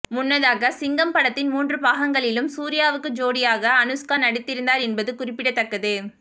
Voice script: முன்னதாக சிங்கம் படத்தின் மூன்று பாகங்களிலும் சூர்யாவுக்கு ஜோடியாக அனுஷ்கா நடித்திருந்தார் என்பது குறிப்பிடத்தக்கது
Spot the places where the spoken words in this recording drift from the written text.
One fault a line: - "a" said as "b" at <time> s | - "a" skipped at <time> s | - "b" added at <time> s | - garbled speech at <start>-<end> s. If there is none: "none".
none